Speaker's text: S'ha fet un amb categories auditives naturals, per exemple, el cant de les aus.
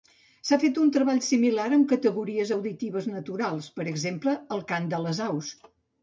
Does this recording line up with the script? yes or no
no